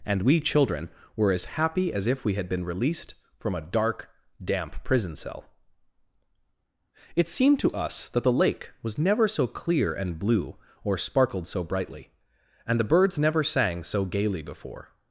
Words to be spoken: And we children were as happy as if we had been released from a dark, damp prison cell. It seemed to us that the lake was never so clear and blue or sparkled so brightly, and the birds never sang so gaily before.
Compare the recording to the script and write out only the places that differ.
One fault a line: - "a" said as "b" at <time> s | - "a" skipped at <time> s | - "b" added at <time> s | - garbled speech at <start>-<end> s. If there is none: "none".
none